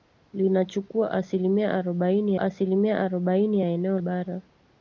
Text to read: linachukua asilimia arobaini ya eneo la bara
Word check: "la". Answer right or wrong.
wrong